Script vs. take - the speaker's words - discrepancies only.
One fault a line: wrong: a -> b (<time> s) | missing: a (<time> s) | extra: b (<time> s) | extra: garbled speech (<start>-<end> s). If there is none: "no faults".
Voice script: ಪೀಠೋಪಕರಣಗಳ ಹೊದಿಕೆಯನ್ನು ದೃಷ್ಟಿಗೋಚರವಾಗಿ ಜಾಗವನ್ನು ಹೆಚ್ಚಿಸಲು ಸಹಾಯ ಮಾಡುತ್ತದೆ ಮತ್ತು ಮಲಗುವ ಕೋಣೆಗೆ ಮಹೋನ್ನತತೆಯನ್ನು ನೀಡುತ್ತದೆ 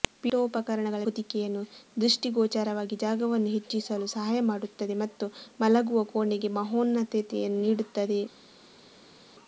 no faults